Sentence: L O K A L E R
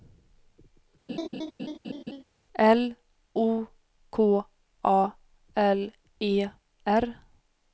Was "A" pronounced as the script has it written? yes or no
yes